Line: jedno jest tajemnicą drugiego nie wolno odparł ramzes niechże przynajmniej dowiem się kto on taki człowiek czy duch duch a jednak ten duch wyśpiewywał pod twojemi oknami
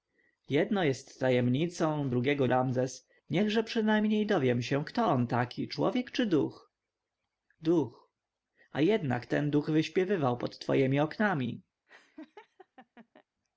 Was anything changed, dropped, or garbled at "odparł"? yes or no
yes